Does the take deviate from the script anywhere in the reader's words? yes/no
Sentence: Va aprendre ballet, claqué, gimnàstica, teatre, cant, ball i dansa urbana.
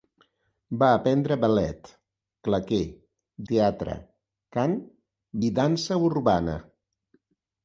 yes